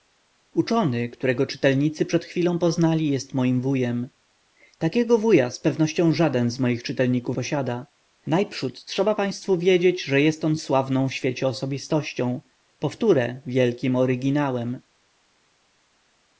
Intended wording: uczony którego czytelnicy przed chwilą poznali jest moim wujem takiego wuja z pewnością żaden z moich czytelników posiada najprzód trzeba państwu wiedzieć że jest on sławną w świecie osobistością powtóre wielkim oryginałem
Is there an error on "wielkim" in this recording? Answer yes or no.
no